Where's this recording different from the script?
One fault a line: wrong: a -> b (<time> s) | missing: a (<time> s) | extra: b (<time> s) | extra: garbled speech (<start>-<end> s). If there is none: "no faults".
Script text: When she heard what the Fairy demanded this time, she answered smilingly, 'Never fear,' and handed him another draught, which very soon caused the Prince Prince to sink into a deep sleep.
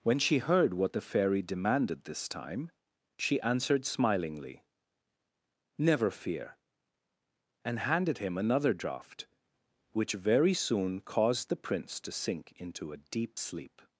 missing: Prince (12.0 s)